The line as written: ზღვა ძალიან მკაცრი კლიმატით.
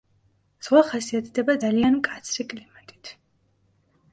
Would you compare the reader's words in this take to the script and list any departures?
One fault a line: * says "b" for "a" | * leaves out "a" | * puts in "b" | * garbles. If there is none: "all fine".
* puts in "ხასიათდება"